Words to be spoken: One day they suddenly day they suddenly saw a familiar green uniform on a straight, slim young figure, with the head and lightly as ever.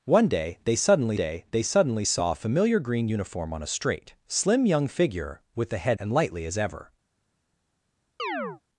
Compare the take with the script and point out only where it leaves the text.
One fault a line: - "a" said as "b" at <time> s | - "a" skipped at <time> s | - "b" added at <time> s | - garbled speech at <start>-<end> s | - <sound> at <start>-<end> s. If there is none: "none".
- chirp at 8.2-8.6 s